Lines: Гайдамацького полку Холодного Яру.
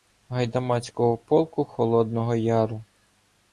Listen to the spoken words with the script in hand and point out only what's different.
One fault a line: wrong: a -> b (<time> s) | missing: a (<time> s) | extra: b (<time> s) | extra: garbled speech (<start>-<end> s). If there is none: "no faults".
no faults